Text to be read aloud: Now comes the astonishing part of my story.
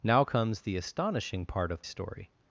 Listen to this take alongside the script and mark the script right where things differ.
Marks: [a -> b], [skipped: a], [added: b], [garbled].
Now comes the astonishing part of [skipped: my] story.